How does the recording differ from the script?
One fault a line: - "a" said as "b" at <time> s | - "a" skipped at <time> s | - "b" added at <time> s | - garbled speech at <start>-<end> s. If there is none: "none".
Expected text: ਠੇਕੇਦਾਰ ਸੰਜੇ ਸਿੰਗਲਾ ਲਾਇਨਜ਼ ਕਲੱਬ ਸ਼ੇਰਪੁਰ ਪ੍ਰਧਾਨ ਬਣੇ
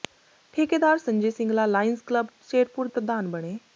none